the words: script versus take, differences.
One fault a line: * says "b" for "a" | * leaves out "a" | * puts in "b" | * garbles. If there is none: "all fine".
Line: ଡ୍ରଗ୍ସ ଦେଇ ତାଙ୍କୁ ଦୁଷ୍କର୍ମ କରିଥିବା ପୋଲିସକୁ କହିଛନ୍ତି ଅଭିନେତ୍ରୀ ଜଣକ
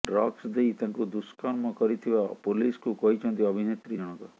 all fine